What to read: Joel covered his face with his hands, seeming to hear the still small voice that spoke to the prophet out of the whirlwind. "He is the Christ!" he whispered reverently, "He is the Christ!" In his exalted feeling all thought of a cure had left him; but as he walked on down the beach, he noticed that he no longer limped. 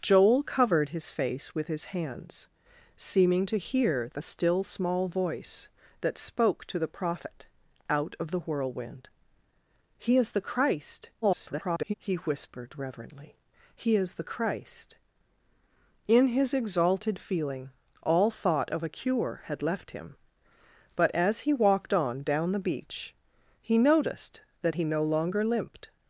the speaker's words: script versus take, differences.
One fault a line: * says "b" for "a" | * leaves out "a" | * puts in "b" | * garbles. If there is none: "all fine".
* garbles